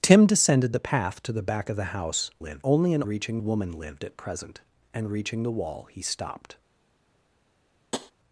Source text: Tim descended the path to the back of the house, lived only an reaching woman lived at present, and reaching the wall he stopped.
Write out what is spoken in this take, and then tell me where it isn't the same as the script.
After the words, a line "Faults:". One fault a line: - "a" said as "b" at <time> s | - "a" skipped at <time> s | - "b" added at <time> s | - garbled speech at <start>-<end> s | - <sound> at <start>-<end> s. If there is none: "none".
Tim descended the path to the back of the house, lived only an reaching woman lived at present, and reaching the wall he stopped.
Faults:
- tap at 7.9-8.1 s